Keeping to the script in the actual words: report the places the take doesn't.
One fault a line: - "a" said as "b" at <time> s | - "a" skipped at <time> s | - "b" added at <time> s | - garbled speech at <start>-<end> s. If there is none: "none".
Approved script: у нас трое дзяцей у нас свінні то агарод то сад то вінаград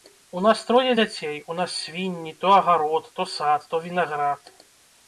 none